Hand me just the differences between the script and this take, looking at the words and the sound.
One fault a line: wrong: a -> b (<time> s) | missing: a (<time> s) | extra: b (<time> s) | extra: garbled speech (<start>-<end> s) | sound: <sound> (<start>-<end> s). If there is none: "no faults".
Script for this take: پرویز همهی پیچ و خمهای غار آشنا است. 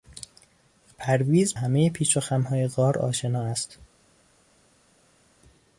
no faults